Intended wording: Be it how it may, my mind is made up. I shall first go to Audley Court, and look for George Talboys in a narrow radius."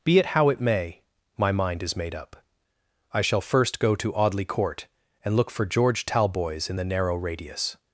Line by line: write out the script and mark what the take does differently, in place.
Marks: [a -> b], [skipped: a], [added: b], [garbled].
Be it how it may, my mind is made up. I shall first go to Audley Court, and look for George Talboys in [a -> the] narrow radius."